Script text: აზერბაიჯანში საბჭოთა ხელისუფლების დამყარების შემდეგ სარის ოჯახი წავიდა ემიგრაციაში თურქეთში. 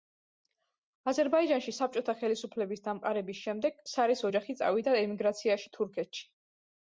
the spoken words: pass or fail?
pass